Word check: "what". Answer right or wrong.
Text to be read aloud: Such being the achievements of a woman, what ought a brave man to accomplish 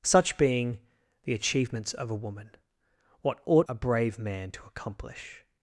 right